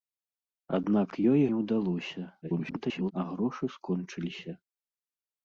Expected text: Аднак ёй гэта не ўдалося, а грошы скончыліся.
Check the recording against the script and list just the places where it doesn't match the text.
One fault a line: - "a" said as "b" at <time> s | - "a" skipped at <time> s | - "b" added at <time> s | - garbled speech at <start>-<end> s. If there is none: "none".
- "гэта" skipped at 1.4 s
- garbled speech at 2.4-3.1 s